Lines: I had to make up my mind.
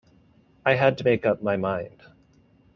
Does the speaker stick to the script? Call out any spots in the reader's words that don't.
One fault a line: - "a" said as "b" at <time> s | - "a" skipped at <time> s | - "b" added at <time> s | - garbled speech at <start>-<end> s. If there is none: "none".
none